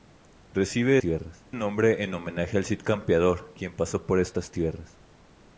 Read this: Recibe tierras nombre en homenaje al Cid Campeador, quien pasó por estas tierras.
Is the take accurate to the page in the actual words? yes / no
yes